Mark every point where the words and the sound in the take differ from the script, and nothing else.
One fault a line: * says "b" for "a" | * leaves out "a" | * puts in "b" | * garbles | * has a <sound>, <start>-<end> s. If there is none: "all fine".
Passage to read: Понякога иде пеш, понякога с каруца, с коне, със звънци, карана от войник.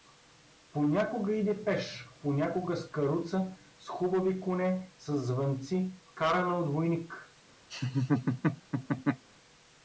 * puts in "хубави"
* has a laugh, 7.7-9.2 s